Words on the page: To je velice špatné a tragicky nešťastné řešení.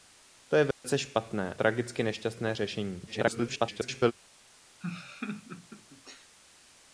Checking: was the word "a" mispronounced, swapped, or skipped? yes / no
yes